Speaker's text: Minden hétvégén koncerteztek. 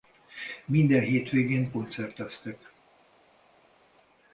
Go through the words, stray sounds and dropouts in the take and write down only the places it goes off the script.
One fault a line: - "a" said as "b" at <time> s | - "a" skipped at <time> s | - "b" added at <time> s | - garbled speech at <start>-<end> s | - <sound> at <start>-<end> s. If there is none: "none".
none